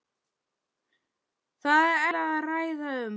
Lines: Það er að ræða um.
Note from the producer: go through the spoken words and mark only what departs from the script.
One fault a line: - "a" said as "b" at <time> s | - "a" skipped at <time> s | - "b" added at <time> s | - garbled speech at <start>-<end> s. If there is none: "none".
none